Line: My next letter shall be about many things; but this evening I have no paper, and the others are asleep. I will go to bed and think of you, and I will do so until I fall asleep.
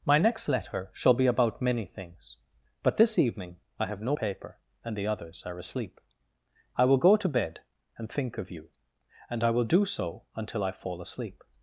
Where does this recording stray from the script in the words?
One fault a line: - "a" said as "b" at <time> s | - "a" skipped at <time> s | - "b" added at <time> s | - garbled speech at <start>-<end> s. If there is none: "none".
none